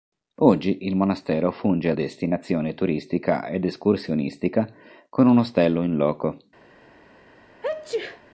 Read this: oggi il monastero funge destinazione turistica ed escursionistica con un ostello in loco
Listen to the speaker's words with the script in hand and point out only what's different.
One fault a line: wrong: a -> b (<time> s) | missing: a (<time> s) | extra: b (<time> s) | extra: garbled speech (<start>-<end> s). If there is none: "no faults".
no faults